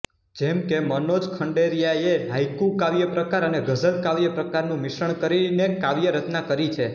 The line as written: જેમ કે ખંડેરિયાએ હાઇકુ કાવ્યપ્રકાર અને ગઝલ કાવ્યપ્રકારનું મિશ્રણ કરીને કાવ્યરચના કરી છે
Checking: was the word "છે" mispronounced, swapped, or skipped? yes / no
no